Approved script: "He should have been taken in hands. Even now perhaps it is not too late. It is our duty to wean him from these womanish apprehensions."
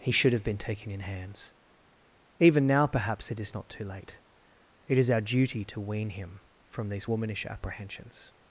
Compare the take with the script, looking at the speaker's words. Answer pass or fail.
pass